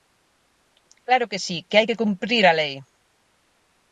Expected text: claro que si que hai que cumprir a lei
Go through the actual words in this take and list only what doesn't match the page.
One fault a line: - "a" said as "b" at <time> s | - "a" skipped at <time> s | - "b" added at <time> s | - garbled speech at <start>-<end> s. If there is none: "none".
none